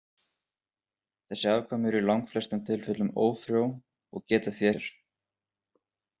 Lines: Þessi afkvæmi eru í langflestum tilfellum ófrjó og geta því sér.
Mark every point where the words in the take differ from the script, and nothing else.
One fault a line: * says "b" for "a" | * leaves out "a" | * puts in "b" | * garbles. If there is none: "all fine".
all fine